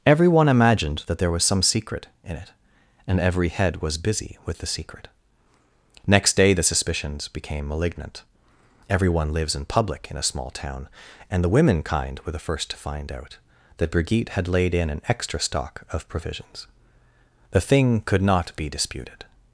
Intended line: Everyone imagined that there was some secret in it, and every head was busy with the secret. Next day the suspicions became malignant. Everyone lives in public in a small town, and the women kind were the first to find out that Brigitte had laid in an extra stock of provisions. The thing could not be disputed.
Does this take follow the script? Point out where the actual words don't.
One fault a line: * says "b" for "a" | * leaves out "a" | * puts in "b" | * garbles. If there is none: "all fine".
all fine